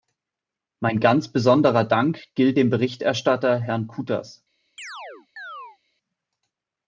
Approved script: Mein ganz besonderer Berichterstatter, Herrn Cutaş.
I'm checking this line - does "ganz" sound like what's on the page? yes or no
yes